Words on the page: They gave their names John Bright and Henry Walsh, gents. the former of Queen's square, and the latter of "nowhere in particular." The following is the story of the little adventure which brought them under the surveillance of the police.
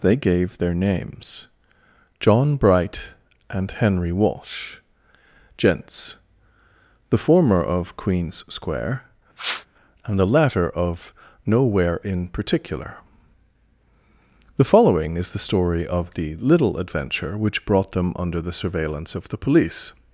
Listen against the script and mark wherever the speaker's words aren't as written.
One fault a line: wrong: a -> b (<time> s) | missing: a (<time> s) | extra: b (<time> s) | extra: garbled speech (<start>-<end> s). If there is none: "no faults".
no faults